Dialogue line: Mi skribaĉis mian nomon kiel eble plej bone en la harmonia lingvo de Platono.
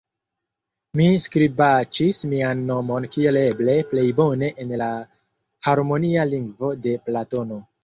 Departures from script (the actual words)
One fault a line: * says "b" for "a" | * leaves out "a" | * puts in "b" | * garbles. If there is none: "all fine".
all fine